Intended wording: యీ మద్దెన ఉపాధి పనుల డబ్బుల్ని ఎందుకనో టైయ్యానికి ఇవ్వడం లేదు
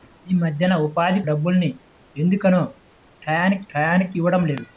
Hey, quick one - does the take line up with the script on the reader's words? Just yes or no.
no